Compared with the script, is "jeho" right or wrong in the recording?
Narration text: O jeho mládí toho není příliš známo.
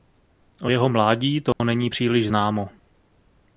right